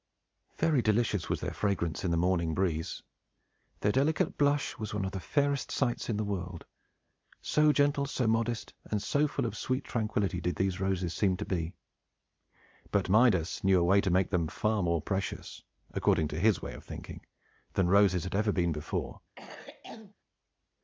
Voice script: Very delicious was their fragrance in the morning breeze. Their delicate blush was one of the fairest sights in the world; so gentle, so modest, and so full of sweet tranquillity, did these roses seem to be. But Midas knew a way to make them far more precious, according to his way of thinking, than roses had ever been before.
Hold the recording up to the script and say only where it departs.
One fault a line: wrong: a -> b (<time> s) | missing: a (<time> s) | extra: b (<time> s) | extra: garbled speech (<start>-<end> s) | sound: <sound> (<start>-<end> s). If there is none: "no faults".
sound: cough (19.4-20.1 s)